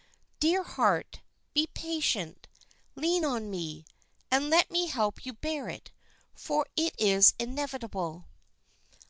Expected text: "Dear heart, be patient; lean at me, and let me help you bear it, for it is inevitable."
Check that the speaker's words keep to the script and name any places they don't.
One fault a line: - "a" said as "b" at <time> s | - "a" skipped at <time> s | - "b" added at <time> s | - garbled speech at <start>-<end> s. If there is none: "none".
- "at" said as "on" at 3.2 s